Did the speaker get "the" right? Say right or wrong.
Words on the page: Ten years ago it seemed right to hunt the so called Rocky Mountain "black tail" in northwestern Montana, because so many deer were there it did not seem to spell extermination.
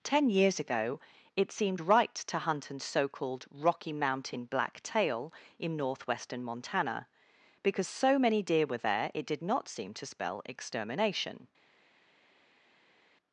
wrong